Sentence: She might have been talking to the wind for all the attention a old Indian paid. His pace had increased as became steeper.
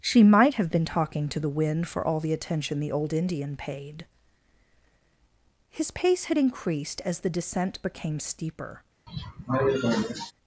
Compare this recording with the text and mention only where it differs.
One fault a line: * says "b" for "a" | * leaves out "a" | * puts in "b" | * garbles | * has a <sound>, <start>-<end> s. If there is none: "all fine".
* says "the" for "a"
* puts in "the descent"
* has a cough, 9.1-10.3 s